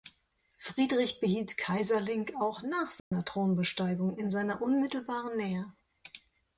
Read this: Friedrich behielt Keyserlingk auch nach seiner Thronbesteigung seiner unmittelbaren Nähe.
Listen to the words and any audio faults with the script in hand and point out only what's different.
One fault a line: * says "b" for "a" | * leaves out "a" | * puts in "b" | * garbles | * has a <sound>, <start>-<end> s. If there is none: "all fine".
* has a dropout, 3.0-3.1 s
* puts in "in"